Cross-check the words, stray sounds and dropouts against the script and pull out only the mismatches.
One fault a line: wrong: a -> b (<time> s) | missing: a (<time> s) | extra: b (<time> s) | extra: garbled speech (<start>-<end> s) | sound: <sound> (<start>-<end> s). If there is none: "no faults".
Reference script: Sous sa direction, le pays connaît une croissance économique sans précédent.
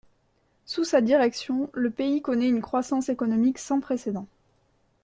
no faults